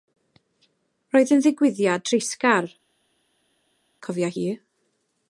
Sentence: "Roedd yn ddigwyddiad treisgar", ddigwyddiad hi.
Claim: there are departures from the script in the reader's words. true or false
true